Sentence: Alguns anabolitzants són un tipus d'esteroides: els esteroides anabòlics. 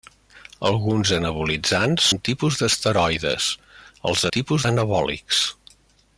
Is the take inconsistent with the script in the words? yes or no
yes